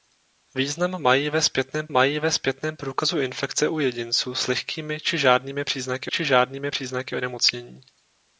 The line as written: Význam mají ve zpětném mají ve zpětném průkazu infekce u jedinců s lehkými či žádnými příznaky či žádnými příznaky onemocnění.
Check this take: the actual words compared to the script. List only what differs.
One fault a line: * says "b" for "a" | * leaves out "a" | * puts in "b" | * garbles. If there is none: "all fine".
all fine